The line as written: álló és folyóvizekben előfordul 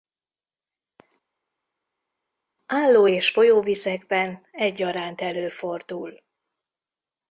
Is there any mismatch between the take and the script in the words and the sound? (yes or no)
yes